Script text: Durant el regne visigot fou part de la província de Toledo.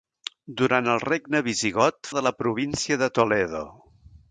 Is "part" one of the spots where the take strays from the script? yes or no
yes